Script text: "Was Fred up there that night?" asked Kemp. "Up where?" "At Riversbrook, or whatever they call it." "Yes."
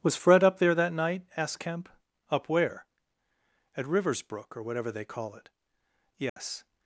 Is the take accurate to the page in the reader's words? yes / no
yes